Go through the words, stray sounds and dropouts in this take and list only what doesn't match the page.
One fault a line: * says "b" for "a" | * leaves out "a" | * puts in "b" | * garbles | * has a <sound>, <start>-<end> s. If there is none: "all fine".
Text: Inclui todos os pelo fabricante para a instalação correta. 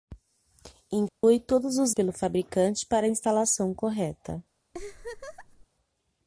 * has a dropout, 1.1-1.2 s
* has a laugh, 4.7-5.7 s